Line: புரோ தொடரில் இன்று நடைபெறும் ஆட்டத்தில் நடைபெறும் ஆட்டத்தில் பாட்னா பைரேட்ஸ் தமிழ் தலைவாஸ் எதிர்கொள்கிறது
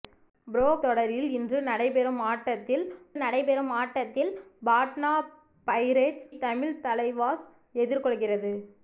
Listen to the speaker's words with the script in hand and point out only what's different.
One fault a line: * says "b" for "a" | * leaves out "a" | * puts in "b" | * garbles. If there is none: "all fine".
all fine